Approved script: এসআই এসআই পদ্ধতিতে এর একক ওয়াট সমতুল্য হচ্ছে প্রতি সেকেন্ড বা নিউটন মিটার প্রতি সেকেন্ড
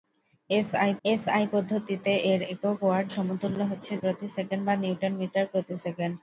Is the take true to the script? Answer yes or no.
yes